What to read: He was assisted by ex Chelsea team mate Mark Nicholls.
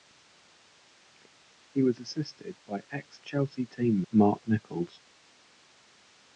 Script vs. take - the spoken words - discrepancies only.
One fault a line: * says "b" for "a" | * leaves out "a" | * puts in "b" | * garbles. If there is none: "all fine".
* leaves out "mate"